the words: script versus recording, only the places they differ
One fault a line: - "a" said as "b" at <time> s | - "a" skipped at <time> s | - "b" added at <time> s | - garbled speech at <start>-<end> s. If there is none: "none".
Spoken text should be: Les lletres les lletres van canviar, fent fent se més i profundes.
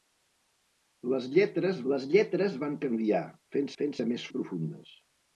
none